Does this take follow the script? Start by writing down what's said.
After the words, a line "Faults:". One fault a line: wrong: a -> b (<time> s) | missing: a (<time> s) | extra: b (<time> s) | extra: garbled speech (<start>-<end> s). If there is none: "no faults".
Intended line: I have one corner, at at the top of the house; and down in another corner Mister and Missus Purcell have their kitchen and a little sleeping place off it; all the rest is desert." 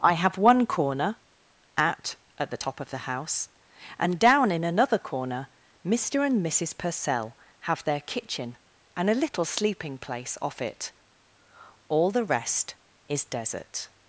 I have one corner, at at the top of the house; and down in another corner Mister and Missus Purcell have their kitchen and a little sleeping place off it; all the rest is desert."
Faults:
no faults